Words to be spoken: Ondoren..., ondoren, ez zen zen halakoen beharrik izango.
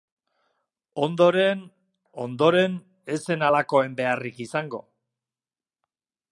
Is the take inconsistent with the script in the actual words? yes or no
yes